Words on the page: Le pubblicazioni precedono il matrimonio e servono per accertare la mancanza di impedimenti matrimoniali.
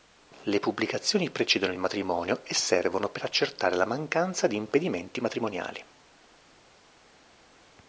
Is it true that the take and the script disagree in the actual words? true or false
false